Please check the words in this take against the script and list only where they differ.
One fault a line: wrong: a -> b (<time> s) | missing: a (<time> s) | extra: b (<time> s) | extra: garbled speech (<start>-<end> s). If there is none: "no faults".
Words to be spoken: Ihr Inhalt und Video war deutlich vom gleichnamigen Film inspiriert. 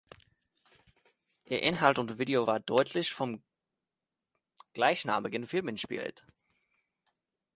no faults